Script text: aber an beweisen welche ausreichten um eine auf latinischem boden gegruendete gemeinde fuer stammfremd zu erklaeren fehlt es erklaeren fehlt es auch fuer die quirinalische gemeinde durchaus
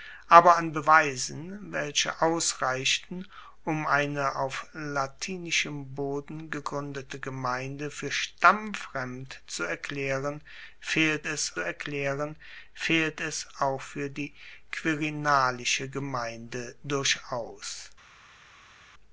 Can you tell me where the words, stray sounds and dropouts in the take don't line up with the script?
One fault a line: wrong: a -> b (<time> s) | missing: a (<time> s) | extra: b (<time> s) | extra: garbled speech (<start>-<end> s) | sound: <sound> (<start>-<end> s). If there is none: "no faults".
no faults